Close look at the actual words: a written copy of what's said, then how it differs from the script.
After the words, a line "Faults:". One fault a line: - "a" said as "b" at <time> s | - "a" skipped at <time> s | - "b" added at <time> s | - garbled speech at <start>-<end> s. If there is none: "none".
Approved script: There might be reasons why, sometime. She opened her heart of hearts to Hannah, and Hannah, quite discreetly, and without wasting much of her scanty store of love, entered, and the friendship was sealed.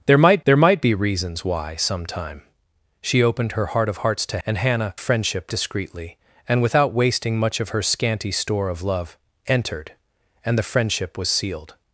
There might there might be reasons why, sometime. She opened her heart of hearts to And Hannah, friendship discreetly, and without wasting much of her scanty store of love, entered, and the friendship was sealed.
Faults:
- "there might" added at 0.4 s
- "Hannah" skipped at 4.4 s
- "quite" said as "friendship" at 5.0 s